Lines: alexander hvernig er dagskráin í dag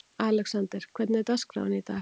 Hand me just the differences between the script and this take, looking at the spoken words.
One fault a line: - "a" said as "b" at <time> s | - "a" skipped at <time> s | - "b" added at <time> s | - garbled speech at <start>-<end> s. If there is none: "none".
none